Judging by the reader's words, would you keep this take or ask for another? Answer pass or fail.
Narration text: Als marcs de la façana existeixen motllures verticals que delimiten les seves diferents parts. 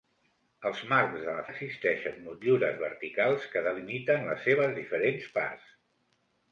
fail